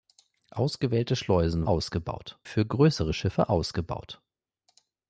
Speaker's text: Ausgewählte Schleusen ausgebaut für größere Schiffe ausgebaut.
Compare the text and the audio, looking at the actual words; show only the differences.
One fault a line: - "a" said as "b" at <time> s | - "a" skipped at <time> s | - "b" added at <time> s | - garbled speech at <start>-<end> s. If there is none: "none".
none